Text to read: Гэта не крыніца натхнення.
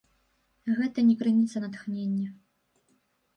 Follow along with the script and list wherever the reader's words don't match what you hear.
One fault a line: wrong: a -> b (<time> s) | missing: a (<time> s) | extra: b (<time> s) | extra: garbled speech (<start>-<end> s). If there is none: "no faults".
no faults